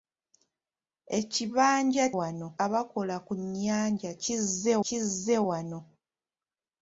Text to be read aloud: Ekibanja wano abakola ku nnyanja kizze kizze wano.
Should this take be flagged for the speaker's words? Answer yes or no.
no